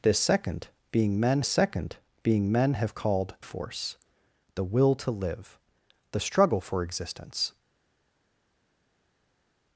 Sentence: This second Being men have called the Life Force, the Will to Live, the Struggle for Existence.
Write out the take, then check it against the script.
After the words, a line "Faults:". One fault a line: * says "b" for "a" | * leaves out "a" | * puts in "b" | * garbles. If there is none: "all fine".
This second Being men second Being men have called Force, the Will to Live, the Struggle for Existence.
Faults:
* puts in "second Being men"
* leaves out "the Life"